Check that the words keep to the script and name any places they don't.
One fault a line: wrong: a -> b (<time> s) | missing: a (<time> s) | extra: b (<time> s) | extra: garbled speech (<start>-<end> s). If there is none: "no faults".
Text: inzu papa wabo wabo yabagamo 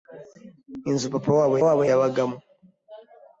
no faults